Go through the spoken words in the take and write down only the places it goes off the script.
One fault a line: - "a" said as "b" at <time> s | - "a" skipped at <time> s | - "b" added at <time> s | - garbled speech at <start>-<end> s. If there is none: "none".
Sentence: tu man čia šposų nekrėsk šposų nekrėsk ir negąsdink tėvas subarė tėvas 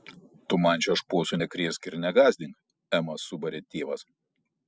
- "šposų nekrėsk" skipped at 1.9 s
- "tėvas" said as "emą" at 3.0 s